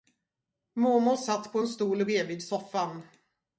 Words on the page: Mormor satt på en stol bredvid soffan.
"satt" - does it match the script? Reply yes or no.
yes